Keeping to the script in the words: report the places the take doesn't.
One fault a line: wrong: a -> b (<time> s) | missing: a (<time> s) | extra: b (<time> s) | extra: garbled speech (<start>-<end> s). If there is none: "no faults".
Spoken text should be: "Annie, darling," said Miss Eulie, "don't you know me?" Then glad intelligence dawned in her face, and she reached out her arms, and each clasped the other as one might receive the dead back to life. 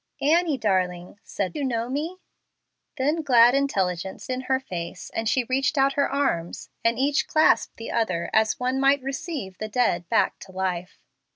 missing: Miss Eulie don't (1.6 s)
missing: dawned (4.3 s)